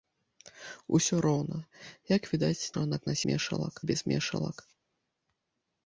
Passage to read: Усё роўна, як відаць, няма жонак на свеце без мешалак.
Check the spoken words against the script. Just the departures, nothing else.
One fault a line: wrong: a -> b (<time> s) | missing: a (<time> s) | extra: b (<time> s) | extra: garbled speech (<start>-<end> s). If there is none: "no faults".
missing: няма (2.7 s)
wrong: свеце -> мешалак (3.3 s)